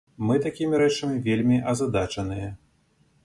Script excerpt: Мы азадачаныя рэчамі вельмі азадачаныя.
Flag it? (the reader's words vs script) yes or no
yes